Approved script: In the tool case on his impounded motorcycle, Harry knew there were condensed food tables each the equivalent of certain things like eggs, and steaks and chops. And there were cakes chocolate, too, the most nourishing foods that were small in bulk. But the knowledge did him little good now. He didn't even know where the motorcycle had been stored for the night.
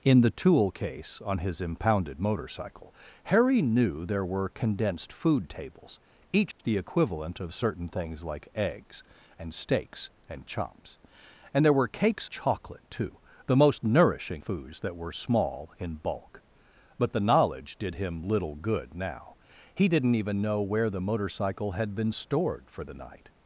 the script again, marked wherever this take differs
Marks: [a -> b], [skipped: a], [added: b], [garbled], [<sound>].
In the tool case on his impounded motorcycle, Harry knew there were condensed food tables each [dropout] the equivalent of certain things like eggs, and steaks and chops. And there were cakes chocolate, too, the most nourishing foods that were small in bulk. But the knowledge did him little good now. He didn't even know where the motorcycle had been stored for the night.